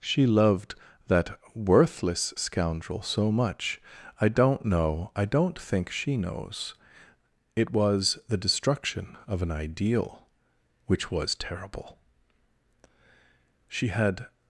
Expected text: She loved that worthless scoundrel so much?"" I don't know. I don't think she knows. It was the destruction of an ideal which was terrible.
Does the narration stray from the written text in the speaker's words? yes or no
yes